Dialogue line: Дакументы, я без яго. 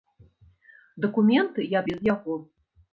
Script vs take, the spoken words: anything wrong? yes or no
no